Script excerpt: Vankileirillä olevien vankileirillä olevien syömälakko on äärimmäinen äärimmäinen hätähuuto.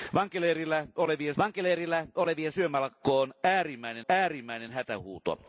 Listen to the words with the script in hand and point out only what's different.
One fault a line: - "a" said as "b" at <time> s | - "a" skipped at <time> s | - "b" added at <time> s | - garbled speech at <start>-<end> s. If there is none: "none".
none